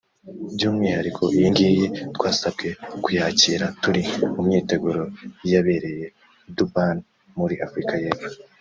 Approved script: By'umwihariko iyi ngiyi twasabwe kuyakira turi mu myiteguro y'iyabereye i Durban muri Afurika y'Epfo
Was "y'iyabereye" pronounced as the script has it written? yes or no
yes